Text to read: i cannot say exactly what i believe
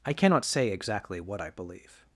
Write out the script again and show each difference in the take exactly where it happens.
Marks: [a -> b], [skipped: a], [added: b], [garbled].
i cannot say exactly what i believe